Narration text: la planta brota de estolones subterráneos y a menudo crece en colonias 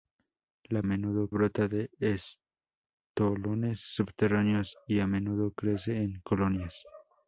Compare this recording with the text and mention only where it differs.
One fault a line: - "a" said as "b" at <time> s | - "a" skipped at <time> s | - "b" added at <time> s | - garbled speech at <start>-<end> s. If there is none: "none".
- "planta" said as "menudo" at 0.8 s